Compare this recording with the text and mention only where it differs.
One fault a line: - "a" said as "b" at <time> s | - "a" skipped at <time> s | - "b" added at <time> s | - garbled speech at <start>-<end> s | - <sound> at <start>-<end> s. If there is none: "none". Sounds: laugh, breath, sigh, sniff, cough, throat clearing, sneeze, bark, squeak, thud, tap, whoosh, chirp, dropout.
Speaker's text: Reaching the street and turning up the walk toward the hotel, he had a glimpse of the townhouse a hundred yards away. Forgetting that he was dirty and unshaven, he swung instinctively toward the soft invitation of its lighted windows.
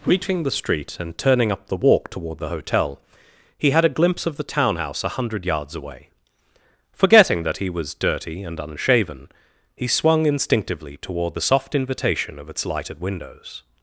none